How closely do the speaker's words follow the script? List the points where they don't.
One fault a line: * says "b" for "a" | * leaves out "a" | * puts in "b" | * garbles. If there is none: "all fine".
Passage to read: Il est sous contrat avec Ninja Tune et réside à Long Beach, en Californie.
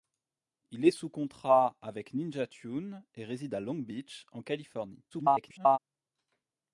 * garbles